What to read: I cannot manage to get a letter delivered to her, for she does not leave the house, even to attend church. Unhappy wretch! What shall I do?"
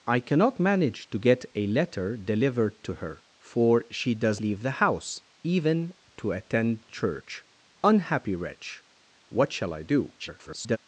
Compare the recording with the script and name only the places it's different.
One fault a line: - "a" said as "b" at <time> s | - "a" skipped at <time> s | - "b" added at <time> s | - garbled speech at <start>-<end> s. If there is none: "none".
- "not" skipped at 4.4 s
- garbled speech at 10.2-10.8 s